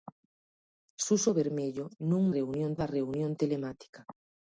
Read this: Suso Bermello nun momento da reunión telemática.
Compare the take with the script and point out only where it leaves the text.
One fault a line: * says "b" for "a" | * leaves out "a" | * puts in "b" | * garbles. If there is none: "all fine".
* says "reunión" for "momento"